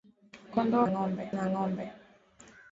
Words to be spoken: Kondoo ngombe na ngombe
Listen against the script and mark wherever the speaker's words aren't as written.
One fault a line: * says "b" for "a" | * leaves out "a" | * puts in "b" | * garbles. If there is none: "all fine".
all fine